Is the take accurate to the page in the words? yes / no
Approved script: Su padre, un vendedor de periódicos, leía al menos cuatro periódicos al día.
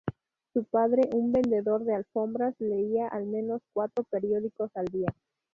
no